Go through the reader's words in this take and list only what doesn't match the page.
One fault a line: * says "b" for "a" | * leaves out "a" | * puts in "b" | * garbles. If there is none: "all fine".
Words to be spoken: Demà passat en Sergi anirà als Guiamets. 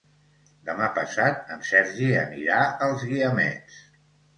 all fine